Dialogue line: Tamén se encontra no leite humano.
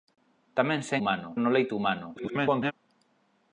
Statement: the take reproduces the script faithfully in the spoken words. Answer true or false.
false